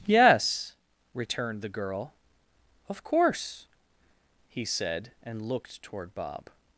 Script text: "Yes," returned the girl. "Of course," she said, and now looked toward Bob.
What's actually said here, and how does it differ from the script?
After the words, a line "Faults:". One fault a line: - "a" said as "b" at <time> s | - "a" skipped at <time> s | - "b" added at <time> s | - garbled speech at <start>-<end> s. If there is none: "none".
"Yes," returned the girl. "Of course," he said, and looked toward Bob.
Faults:
- "she" said as "he" at 4.5 s
- "now" skipped at 5.5 s